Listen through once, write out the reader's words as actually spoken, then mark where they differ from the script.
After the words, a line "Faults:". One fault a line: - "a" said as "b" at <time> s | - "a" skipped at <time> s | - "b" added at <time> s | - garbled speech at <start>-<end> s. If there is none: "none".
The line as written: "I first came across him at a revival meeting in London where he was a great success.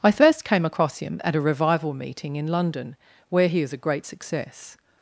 "I first came across him at a revival meeting in London where he is a great success.
Faults:
- "was" said as "is" at 3.6 s